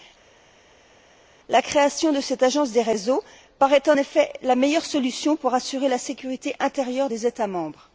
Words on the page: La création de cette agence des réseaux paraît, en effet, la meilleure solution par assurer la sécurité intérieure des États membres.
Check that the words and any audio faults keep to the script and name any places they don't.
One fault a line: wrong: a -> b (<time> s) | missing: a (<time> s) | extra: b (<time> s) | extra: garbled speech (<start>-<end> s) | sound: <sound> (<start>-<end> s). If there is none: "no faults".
wrong: par -> pour (5.4 s)